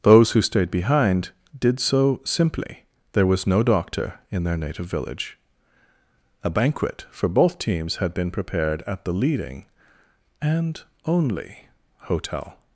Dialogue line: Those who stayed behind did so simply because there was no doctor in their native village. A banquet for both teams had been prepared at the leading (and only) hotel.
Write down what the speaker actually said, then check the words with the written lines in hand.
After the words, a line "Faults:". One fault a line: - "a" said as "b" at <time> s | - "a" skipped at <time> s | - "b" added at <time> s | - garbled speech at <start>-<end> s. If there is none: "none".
Those who stayed behind did so simply there was no doctor in their native village. A banquet for both teams had been prepared at the leading (and only) hotel.
Faults:
- "because" skipped at 2.9 s